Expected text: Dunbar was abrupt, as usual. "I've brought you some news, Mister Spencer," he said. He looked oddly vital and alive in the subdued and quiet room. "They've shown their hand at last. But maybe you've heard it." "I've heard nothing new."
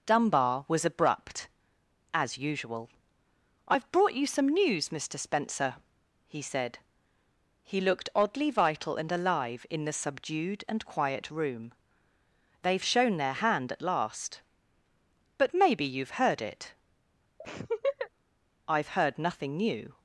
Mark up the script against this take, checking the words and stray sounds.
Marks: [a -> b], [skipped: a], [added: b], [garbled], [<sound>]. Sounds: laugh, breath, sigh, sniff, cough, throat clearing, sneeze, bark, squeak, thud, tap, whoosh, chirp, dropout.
Dunbar was abrupt, as usual. "I've brought you some news, Mister Spencer," he said. He looked oddly vital and alive in the subdued and quiet room. "They've shown their hand at last. But maybe you've heard it." [laugh] "I've heard nothing new."